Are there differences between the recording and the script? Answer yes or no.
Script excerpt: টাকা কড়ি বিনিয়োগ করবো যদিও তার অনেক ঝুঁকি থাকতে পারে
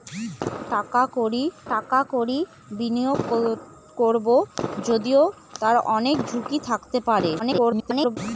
yes